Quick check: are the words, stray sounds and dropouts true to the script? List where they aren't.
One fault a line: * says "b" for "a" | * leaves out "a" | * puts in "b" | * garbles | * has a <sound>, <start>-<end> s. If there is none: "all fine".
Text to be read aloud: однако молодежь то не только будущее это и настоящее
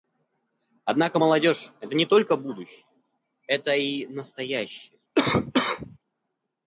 * says "это" for "то"
* has a cough, 5.2-6.0 s